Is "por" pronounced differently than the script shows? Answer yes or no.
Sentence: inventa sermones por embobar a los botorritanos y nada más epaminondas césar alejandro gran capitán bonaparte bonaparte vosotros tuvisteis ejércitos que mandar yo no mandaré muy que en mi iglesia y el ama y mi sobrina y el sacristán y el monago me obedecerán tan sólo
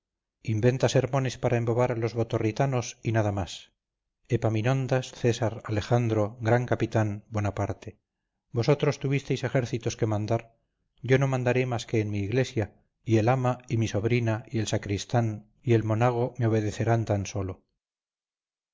yes